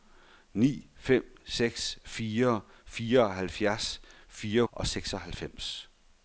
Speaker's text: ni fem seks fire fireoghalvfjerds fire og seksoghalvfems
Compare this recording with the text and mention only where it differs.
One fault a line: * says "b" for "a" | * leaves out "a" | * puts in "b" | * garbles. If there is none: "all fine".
all fine